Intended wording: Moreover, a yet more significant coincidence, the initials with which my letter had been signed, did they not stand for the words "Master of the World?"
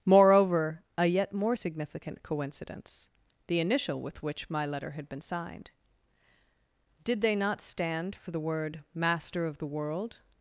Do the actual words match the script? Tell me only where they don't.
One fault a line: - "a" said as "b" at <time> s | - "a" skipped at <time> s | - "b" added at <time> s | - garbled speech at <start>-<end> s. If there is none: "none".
- "initials" said as "initial" at 3.6 s
- "words" said as "word" at 8.4 s